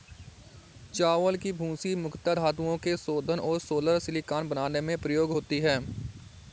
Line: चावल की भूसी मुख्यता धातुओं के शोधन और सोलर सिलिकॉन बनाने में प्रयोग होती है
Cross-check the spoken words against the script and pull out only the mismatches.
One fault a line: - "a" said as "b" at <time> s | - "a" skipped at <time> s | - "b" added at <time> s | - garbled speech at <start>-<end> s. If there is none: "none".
none